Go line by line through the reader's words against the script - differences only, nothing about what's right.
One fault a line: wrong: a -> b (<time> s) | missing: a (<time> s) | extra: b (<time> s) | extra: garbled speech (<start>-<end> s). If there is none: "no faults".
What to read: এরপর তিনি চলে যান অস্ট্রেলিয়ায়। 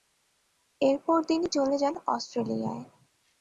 no faults